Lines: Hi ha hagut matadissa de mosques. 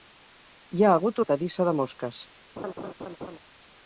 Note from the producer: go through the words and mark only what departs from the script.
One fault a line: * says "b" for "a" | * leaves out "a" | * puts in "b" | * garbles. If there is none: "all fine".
all fine